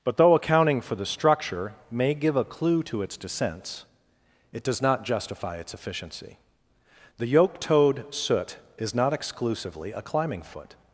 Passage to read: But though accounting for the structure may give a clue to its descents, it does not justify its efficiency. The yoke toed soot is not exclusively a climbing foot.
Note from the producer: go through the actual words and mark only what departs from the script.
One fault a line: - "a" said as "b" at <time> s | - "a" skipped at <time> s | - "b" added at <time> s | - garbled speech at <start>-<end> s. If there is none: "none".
none